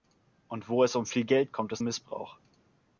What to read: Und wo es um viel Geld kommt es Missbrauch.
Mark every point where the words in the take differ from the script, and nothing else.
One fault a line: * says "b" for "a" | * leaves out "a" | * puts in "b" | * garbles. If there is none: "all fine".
all fine